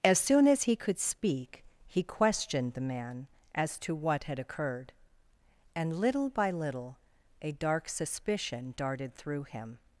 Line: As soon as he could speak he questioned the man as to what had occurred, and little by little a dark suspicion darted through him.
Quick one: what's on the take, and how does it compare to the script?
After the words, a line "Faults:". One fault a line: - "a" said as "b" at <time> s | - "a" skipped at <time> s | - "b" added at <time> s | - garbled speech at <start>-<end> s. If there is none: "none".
As soon as he could speak he questioned the man as to what had occurred, and little by little a dark suspicion darted through him.
Faults:
none